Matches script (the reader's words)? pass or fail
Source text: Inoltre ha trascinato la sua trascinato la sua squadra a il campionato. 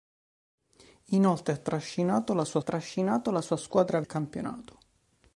pass